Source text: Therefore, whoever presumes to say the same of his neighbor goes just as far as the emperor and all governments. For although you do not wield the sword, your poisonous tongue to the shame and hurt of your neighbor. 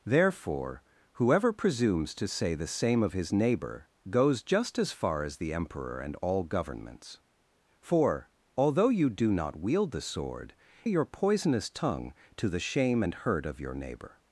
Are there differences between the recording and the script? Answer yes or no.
no